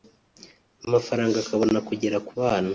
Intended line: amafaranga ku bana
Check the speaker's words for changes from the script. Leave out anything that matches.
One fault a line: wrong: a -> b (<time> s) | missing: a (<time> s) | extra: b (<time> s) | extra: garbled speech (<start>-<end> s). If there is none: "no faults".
extra: akabona kugera (1.4 s)